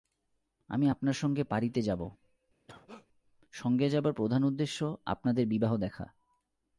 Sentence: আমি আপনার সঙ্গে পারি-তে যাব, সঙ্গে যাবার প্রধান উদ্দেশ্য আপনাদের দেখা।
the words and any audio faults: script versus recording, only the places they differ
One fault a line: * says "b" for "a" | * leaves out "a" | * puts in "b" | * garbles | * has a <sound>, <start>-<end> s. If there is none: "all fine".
* has a cough, 2.7-3.1 s
* puts in "বিবাহ"